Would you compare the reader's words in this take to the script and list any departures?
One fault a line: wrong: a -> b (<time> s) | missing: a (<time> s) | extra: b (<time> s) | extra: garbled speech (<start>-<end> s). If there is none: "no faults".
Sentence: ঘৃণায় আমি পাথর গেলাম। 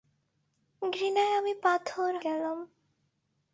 no faults